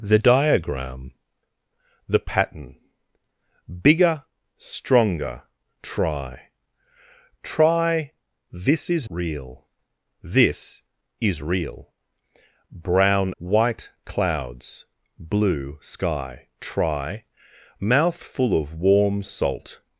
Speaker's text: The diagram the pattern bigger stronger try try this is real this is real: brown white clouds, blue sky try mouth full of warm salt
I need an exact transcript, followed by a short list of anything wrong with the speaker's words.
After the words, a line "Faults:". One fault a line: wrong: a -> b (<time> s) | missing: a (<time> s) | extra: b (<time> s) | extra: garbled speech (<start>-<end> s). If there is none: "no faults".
The diagram the pattern bigger stronger try try this is real this is real: brown white clouds, blue sky try mouth full of warm salt
Faults:
no faults